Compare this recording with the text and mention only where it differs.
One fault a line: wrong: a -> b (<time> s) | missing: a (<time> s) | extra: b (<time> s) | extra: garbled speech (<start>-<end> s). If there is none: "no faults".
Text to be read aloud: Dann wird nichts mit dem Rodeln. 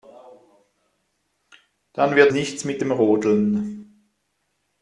no faults